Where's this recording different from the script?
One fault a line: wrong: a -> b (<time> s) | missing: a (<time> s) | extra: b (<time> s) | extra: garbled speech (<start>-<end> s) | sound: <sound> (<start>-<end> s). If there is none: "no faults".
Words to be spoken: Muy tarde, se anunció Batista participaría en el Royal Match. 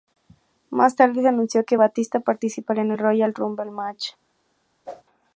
wrong: Muy -> Más (0.7 s)
extra: que (1.6 s)
extra: Rumble (3.3 s)
sound: whoosh (4.9-5.0 s)